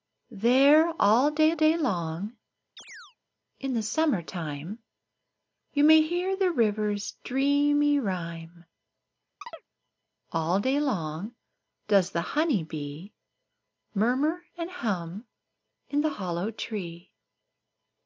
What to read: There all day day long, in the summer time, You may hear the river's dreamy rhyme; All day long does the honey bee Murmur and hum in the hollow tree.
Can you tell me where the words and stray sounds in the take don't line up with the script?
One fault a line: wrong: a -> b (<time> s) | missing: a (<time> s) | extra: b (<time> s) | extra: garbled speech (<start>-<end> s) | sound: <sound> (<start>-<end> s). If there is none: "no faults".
sound: chirp (2.8-3.2 s)
sound: chirp (9.4-9.7 s)